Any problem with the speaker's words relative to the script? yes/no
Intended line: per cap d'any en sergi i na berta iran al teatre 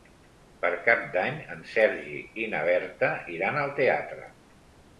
no